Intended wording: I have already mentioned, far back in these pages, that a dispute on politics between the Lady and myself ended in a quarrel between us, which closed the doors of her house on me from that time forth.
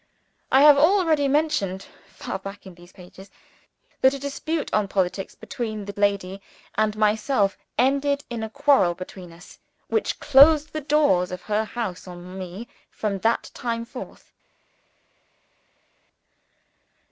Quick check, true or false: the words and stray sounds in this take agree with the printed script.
true